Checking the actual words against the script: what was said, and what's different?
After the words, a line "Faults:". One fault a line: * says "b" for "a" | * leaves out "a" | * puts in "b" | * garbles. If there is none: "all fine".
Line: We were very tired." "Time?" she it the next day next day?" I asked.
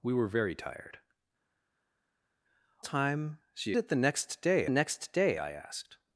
We were very tired." "Time?" she it the next day next day?" I asked.
Faults:
all fine